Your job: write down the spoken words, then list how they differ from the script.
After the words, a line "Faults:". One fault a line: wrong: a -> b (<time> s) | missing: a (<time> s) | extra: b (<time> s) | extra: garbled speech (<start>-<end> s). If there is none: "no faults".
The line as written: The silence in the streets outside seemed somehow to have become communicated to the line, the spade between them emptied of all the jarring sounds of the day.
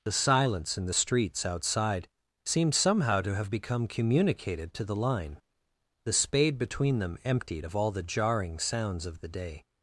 The silence in the streets outside seemed somehow to have become communicated to the line, the spade between them emptied of all the jarring sounds of the day.
Faults:
no faults